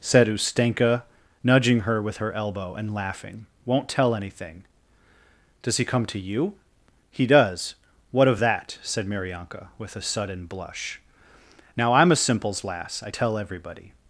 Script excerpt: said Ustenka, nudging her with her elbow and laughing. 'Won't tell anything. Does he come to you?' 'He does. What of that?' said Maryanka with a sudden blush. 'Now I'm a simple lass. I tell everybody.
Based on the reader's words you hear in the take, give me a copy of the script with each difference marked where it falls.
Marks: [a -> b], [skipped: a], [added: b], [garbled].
said Ustenka, nudging her with her elbow and laughing. 'Won't tell anything. Does he come to you?' 'He does. What of that?' said Maryanka with a sudden blush. 'Now I'm a [simple -> simples] lass. I tell everybody.